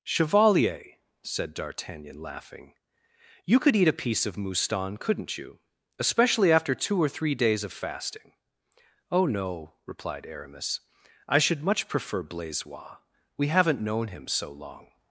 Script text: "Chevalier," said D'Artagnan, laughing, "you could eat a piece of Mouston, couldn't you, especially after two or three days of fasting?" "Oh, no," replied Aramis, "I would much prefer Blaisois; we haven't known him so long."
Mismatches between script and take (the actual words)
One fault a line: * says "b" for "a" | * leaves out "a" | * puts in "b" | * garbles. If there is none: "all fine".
* says "should" for "would"